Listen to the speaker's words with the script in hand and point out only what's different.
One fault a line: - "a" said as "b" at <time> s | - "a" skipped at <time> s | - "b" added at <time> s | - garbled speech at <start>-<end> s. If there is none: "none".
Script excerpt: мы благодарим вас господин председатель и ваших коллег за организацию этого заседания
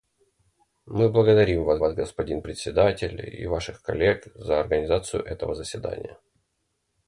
- "вас" added at 1.8 s